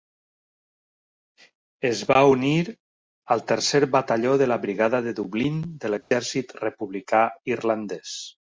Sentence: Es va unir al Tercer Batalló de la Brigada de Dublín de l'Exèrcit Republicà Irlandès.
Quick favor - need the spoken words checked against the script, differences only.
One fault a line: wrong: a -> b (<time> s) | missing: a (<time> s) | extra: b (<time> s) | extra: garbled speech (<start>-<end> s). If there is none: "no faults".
no faults